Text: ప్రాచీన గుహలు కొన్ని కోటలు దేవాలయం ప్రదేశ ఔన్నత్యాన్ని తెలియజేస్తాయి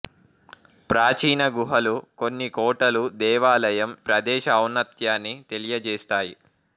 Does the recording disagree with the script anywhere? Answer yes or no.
no